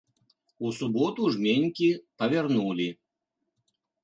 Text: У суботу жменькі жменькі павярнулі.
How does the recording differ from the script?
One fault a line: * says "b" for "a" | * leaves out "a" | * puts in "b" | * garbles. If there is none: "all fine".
* leaves out "жменькі"